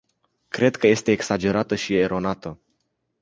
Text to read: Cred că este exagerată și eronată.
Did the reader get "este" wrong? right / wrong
right